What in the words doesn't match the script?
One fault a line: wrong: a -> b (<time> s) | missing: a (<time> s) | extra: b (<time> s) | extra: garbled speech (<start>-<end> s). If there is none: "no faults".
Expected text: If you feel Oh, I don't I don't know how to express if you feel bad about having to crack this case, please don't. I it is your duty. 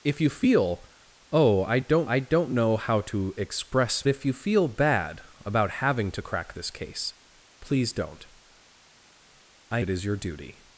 no faults